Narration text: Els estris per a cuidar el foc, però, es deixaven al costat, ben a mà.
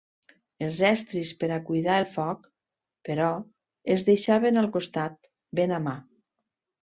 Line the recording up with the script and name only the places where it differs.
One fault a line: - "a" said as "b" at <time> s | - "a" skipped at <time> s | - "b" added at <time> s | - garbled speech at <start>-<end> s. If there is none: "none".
none